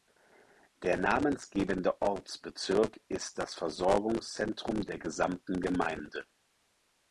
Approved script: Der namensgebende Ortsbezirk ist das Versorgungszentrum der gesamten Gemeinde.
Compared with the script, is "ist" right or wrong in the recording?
right